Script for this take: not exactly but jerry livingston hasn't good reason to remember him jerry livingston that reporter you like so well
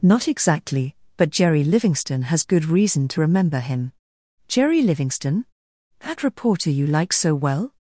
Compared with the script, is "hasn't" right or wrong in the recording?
wrong